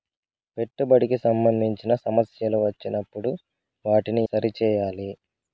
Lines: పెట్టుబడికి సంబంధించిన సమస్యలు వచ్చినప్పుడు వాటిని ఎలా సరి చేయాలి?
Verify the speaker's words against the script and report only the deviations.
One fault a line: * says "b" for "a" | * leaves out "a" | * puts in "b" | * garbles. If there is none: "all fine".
* leaves out "ఎలా"